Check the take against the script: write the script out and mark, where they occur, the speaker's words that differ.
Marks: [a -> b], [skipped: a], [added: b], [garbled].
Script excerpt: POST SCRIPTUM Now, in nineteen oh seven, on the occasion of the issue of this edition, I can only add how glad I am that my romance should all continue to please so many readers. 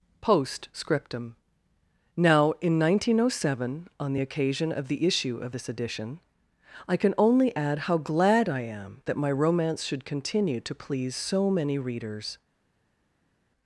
POST SCRIPTUM Now, in nineteen oh seven, on the occasion of the issue of this edition, I can only add how glad I am that my romance should [skipped: all] continue to please so many readers.